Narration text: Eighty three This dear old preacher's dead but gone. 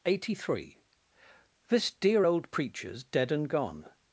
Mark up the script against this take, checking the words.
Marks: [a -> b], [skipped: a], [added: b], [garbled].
Eighty three This dear old preacher's dead [but -> and] gone.